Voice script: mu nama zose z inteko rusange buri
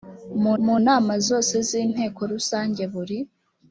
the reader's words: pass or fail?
fail